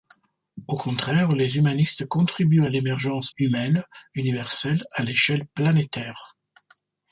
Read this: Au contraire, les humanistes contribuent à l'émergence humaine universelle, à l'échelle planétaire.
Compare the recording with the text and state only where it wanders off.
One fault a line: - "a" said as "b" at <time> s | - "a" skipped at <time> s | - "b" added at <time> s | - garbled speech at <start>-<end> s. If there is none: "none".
none